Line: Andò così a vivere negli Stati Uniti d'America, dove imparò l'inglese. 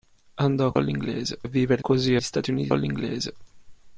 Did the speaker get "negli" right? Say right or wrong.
wrong